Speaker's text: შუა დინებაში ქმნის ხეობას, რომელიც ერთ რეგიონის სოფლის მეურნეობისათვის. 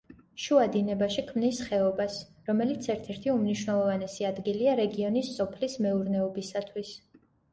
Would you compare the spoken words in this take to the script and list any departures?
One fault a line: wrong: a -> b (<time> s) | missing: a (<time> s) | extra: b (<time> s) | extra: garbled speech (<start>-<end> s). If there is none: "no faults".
extra: ერთი უმნიშვნელოვანესი ადგილია (3.1 s)